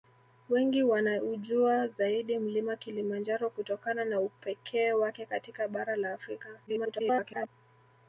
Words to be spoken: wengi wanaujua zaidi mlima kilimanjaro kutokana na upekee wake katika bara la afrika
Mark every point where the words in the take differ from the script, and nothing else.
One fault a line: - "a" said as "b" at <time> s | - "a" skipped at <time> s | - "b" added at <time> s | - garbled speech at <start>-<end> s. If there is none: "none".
- garbled speech at 6.7-7.5 s